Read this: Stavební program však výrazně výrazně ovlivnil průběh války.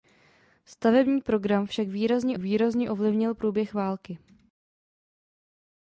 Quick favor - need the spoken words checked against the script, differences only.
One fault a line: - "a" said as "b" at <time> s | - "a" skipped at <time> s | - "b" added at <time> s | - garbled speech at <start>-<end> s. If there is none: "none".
none